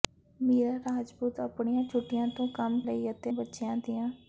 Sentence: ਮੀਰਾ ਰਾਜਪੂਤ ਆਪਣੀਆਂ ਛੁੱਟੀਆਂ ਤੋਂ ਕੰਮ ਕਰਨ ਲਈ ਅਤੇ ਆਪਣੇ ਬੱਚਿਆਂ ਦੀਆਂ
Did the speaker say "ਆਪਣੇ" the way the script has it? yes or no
no